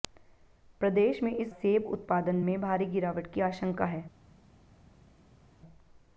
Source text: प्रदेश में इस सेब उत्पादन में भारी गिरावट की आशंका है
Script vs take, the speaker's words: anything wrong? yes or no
no